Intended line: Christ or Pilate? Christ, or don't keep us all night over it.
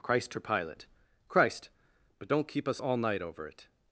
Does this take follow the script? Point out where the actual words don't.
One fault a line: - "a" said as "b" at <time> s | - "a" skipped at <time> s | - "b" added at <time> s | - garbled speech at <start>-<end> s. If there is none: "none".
- "or" said as "but" at 2.2 s